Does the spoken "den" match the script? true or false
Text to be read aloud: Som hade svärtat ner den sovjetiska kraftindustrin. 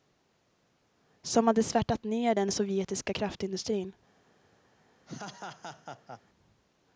true